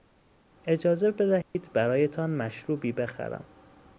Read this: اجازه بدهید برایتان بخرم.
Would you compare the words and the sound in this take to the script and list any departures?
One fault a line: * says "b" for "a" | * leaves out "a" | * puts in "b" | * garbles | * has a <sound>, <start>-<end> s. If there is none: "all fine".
* has a dropout, 1.4-1.6 s
* puts in "مشروبی"